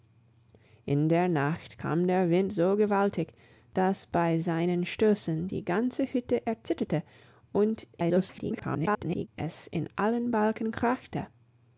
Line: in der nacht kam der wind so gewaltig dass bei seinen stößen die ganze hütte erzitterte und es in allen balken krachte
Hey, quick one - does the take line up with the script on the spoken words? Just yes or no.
no